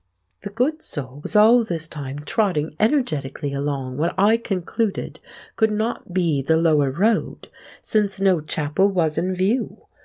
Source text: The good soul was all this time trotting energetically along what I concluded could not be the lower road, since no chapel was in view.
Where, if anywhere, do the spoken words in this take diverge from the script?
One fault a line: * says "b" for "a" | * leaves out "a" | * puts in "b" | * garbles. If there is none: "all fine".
all fine